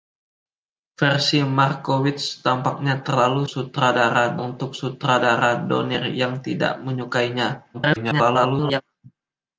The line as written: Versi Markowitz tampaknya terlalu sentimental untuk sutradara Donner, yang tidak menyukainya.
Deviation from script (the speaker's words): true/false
true